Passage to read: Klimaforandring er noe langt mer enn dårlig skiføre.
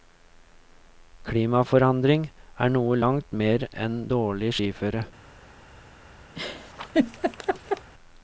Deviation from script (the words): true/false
false